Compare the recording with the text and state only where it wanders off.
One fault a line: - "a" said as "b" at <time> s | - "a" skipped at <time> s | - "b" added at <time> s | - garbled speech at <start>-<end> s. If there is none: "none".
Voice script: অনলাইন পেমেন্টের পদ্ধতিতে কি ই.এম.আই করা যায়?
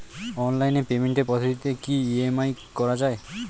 none